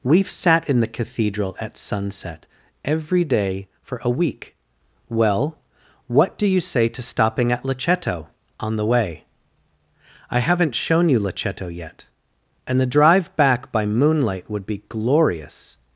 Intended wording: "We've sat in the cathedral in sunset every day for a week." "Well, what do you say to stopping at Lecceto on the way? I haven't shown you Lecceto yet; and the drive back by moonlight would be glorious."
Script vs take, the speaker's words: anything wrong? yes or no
yes